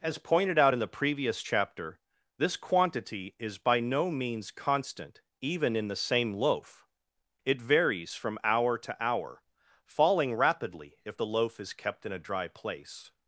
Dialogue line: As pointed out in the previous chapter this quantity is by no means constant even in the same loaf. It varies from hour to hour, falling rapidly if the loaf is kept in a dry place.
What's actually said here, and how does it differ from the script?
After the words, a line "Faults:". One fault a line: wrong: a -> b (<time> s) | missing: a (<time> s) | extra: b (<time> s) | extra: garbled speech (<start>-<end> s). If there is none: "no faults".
As pointed out in the previous chapter this quantity is by no means constant even in the same loaf. It varies from hour to hour, falling rapidly if the loaf is kept in a dry place.
Faults:
no faults